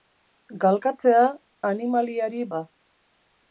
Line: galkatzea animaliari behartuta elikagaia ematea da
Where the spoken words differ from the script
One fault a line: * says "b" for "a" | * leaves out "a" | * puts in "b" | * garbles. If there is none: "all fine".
* leaves out "behartuta elikagaia ematea"